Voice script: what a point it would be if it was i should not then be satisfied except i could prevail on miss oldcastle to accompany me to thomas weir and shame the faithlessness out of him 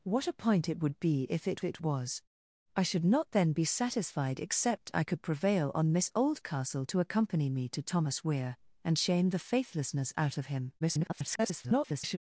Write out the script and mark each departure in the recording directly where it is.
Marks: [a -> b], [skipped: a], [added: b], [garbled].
what a point it would be if it [added: it] was i should not then be satisfied except i could prevail on miss oldcastle to accompany me to thomas weir and shame the faithlessness out of him [garbled]